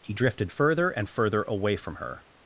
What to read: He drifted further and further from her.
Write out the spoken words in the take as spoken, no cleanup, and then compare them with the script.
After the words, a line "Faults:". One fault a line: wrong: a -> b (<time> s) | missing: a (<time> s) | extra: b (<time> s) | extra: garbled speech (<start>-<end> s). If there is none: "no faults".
He drifted further and further away from her.
Faults:
extra: away (1.4 s)